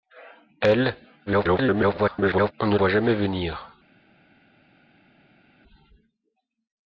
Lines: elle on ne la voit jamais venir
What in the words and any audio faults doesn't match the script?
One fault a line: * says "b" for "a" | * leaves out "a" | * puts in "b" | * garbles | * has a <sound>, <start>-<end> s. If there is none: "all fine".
* garbles
* leaves out "la"